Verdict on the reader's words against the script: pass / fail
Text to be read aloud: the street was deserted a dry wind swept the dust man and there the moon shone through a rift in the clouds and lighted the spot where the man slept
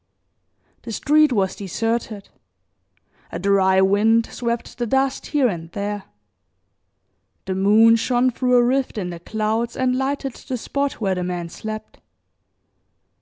fail